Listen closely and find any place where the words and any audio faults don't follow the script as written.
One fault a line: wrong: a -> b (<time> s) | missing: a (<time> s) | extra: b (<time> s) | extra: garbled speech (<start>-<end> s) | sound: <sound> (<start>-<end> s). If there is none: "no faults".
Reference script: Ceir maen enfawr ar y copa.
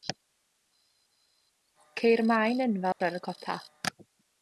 sound: dropout (2.9-3.0 s)